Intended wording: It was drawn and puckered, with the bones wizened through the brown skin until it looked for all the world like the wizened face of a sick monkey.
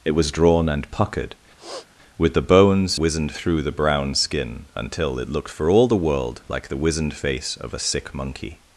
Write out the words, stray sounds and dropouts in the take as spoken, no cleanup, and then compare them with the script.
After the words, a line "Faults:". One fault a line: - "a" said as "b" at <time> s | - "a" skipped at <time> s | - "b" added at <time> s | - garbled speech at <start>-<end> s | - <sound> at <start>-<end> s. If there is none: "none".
It was drawn and puckered, with the bones wizened through the brown skin until it looked for all the world like the wizened face of a sick monkey.
Faults:
- sniff at 1.6-1.9 s